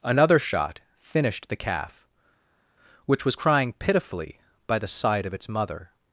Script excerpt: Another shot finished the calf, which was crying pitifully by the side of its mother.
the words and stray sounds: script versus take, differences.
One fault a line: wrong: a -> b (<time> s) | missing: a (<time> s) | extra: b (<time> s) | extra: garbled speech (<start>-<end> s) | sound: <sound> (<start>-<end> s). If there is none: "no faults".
no faults